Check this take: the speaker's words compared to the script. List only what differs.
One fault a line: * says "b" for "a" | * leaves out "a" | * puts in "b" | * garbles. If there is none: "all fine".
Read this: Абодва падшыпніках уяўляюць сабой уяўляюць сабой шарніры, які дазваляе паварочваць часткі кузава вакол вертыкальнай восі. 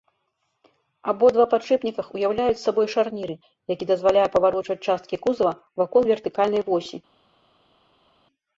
* leaves out "уяўляюць сабой"